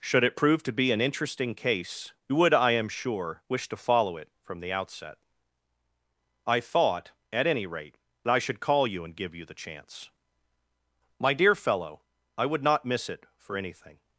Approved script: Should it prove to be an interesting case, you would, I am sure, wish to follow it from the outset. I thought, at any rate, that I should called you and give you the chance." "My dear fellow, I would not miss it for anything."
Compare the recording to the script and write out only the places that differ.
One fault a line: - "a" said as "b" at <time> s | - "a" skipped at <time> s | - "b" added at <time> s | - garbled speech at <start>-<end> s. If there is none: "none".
- "called" said as "call" at 8.6 s